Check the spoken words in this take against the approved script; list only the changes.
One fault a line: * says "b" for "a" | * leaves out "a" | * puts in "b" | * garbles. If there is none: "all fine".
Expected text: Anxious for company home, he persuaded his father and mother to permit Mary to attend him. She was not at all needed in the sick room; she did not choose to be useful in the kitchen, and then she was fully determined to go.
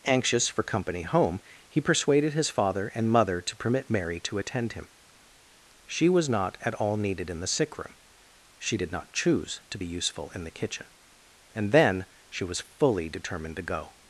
all fine